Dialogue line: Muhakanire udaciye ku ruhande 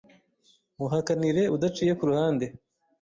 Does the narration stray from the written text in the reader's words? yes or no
no